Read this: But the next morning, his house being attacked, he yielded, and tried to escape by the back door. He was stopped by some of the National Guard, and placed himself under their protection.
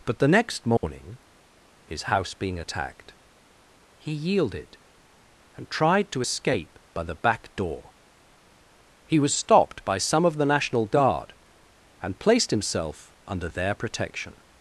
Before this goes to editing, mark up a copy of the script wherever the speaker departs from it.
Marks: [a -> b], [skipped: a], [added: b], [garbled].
But the next morning, his house being attacked, he yielded, and tried to escape by the back door. He was stopped by some of the National Guard, and placed himself under their protection.